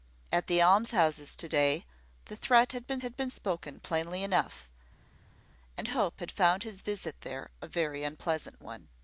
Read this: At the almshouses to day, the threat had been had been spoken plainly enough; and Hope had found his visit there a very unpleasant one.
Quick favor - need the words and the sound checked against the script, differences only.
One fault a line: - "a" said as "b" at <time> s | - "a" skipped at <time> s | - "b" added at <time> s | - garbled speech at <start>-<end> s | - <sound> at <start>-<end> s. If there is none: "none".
none